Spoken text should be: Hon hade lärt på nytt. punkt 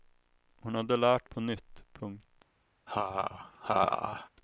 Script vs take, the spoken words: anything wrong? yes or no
no